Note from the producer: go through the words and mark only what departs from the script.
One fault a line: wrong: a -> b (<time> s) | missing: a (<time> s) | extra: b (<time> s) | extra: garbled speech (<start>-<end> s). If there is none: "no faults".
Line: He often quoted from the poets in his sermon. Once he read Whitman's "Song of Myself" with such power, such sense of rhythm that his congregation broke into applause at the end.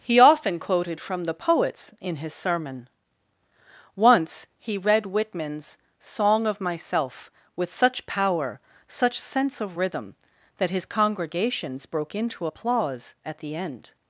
wrong: congregation -> congregations (10.8 s)